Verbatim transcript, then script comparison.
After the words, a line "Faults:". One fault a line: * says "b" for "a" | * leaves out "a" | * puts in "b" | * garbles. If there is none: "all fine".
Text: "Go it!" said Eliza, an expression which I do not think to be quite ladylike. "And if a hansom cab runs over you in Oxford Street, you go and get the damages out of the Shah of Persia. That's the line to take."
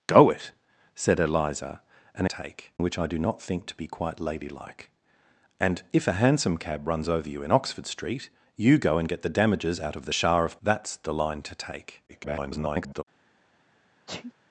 "Go it!" said Eliza, an take which I do not think to be quite ladylike. "And if a hansom cab runs over you in Oxford Street, you go and get the damages out of the Shah of. That's the line to take." [garbled]
Faults:
* says "take" for "expression"
* leaves out "Persia"
* garbles